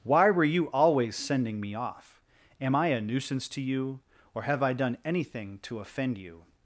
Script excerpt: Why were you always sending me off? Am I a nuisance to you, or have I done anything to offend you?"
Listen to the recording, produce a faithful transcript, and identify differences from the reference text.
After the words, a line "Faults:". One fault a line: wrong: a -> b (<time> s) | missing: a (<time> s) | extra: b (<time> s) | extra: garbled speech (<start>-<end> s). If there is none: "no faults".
Why were you always sending me off? Am I a nuisance to you, or have I done anything to offend you?"
Faults:
no faults